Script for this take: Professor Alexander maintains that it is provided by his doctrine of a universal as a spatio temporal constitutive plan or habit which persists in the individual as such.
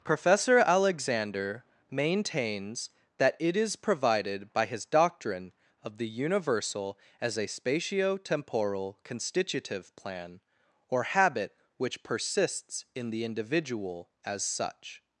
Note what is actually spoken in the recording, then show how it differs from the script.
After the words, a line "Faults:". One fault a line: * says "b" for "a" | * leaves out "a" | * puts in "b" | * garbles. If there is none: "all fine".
Professor Alexander maintains that it is provided by his doctrine of the universal as a spatio temporal constitutive plan or habit which persists in the individual as such.
Faults:
* says "the" for "a"